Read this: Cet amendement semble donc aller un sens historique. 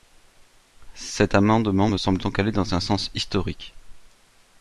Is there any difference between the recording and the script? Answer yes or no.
yes